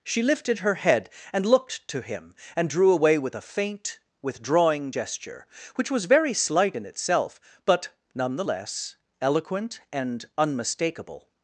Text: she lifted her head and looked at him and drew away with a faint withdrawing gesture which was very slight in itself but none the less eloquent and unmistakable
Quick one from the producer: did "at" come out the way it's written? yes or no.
no